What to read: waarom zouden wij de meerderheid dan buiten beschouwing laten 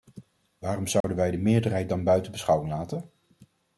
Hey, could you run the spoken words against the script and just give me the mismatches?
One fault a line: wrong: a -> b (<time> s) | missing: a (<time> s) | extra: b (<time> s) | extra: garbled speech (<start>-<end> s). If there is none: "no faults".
no faults